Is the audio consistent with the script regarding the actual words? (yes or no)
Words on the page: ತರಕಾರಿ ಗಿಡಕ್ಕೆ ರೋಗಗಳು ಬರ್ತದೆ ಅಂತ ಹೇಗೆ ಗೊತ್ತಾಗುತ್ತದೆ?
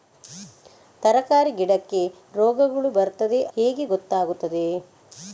no